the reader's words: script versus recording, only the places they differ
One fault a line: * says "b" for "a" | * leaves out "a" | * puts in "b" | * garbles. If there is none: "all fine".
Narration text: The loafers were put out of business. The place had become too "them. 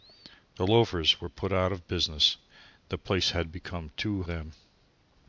all fine